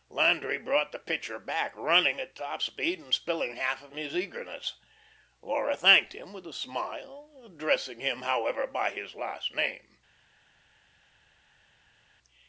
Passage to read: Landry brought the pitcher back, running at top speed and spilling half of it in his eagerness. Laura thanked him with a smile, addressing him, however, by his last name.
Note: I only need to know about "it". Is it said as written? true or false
false